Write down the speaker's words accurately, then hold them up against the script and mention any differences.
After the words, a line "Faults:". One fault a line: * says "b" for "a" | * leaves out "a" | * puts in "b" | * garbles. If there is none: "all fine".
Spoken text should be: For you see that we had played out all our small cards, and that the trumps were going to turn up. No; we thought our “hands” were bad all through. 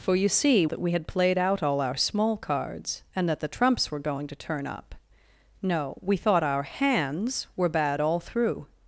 For you see that we had played out all our small cards, and that the trumps were going to turn up. No; we thought our “hands” were bad all through.
Faults:
all fine